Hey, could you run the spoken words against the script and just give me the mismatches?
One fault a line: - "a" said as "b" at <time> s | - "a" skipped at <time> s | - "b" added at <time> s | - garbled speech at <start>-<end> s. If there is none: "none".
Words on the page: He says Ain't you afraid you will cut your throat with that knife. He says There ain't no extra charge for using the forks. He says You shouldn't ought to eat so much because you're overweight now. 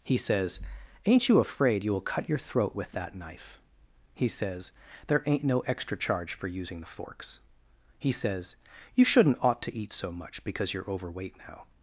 none